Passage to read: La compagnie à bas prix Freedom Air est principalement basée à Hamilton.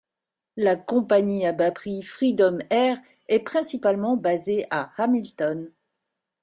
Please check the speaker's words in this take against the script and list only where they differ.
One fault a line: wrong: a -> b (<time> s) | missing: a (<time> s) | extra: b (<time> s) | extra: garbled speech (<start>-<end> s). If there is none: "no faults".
no faults